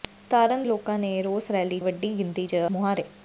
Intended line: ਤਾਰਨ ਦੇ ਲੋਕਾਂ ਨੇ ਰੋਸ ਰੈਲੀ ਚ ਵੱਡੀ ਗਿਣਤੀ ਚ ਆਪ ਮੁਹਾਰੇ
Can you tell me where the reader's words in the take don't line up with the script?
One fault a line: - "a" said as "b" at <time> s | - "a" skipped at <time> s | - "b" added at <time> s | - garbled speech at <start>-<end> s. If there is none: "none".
- "ਦੇ" skipped at 0.6 s
- "ਚ" skipped at 1.8 s
- "ਆਪ" skipped at 2.6 s